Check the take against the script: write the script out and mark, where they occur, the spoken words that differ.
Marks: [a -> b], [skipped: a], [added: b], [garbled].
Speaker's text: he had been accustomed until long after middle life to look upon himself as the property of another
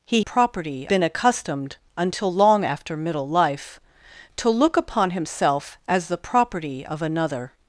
he [had -> property] been accustomed until long after middle life to look upon himself as the property of another